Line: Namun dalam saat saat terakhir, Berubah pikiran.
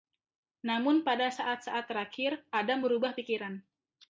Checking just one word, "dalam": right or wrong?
wrong